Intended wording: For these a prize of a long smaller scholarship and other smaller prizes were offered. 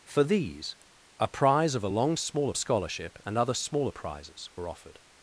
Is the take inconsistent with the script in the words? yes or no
no